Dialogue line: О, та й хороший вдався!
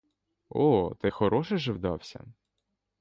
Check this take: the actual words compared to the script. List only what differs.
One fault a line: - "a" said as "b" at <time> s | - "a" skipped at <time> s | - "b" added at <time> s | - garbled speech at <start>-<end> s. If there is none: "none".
- "же" added at 1.6 s